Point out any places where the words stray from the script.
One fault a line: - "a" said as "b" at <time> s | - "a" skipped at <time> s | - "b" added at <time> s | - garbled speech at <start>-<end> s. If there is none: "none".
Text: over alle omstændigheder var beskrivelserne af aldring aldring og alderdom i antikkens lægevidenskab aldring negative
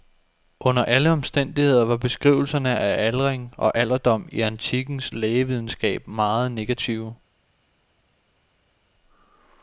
- "over" said as "under" at 0.6 s
- "aldring" skipped at 3.5 s
- "aldring" said as "meget" at 6.1 s